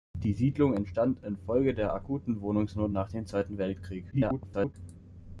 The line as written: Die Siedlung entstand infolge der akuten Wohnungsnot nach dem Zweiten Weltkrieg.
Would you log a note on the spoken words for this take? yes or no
yes